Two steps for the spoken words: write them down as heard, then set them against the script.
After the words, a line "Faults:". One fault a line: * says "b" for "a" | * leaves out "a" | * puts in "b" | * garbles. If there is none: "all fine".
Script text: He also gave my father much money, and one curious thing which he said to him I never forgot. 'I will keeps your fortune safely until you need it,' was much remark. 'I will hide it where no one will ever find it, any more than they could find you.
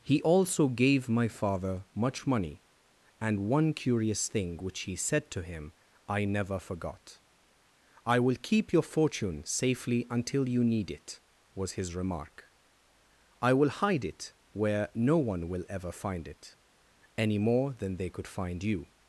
He also gave my father much money, and one curious thing which he said to him I never forgot. 'I will keep your fortune safely until you need it,' was his remark. 'I will hide it where no one will ever find it, any more than they could find you.
Faults:
* says "keep" for "keeps"
* says "his" for "much"